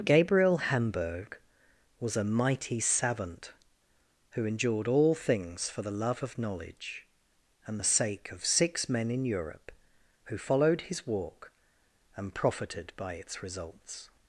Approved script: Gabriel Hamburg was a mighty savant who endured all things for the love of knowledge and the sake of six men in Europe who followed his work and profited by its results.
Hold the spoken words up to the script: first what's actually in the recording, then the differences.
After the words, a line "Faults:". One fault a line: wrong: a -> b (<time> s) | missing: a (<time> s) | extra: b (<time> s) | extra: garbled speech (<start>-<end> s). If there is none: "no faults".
Gabriel Hamburg was a mighty savant who endured all things for the love of knowledge and the sake of six men in Europe who followed his walk and profited by its results.
Faults:
wrong: work -> walk (11.1 s)